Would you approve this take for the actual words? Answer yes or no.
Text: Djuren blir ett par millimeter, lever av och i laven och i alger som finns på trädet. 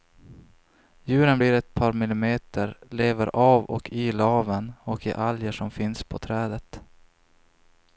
yes